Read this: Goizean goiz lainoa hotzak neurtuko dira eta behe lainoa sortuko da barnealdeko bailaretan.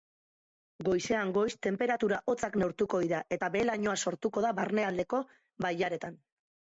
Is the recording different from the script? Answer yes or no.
yes